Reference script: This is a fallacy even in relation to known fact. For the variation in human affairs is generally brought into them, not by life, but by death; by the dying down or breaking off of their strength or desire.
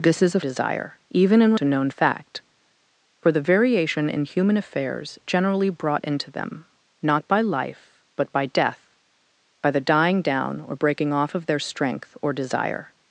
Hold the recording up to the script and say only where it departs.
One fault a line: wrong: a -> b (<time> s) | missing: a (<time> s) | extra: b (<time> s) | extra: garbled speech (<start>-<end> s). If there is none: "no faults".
wrong: fallacy -> desire (0.4 s)
missing: relation (1.5 s)
missing: is (5.2 s)